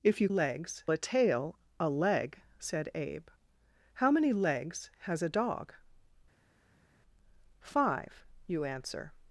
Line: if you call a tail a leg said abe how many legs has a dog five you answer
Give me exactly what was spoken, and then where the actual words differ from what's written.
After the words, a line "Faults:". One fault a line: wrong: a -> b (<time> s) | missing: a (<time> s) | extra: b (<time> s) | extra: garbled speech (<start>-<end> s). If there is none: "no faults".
if you legs a tail a leg said abe how many legs has a dog five you answer
Faults:
wrong: call -> legs (0.3 s)